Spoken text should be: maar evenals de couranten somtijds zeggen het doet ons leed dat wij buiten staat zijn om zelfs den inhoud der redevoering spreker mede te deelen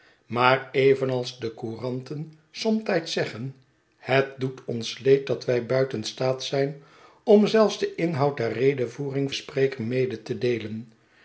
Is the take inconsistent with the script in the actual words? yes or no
no